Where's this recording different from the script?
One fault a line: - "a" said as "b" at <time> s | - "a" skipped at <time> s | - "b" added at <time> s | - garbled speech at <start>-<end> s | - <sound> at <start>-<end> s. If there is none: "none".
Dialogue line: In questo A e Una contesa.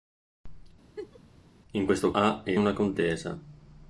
- laugh at 1.0-1.2 s